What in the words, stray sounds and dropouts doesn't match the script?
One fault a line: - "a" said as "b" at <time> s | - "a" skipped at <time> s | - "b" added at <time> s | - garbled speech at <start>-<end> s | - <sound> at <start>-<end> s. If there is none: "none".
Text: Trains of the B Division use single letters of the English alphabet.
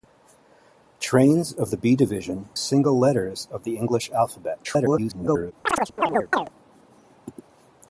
- "use" skipped at 2.5 s
- garbled speech at 4.6-5.5 s
- chirp at 5.7-6.5 s